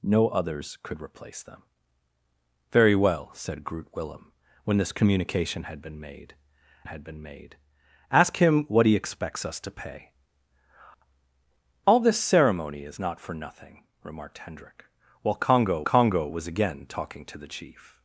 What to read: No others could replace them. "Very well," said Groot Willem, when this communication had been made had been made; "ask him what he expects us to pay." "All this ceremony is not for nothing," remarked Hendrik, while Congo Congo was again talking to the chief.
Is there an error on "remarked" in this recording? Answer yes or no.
no